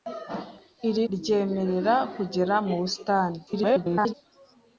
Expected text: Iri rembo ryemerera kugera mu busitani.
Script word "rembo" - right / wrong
wrong